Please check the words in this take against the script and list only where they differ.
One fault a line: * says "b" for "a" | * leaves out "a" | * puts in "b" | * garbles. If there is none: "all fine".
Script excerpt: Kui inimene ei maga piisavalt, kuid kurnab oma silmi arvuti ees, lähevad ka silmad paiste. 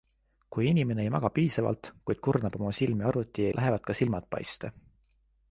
* leaves out "ees"